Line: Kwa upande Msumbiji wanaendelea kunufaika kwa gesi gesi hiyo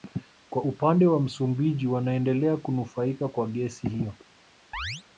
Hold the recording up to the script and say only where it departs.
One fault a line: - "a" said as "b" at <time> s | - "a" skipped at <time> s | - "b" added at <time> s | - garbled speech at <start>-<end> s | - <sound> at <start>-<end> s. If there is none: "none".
- "wa" added at 1.1 s
- "gesi" skipped at 3.9 s
- chirp at 4.7-5.0 s